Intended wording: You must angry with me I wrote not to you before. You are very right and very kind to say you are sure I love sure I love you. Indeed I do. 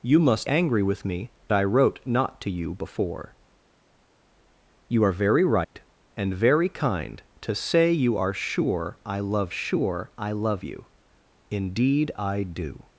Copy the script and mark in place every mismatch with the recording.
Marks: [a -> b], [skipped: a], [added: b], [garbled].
You must angry with me I wrote not to you before. You are very right and very kind to say you are sure I love sure I love you. Indeed I do.